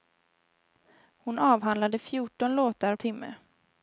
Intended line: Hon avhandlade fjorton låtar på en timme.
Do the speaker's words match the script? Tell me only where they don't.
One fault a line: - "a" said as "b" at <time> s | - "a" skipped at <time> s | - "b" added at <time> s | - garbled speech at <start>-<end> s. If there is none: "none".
- "på en" skipped at 3.0 s